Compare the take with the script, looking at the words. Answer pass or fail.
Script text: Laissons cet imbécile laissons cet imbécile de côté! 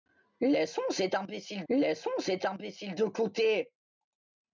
pass